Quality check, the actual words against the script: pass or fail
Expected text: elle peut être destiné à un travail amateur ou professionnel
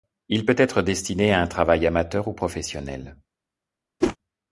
fail